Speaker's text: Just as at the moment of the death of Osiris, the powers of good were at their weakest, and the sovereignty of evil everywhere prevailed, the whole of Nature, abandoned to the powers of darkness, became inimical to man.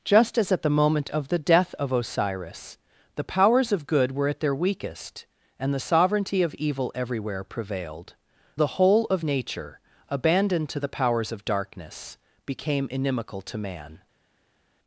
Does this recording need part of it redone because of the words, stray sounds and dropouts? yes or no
no